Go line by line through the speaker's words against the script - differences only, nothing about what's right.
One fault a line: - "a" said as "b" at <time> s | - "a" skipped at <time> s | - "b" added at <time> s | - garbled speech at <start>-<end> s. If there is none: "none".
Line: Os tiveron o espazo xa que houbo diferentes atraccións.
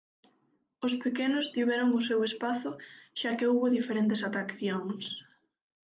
- "pequenos" added at 1.0 s
- "seu" added at 2.1 s